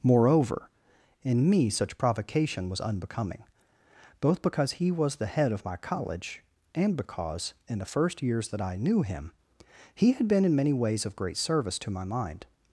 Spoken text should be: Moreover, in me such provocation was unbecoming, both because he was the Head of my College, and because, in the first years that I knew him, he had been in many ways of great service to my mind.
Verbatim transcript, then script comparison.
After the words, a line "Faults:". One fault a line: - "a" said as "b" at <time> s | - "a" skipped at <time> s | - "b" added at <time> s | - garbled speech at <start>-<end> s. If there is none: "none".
Moreover, in me such provocation was unbecoming, both because he was the Head of my College, and because, in the first years that I knew him, he had been in many ways of great service to my mind.
Faults:
none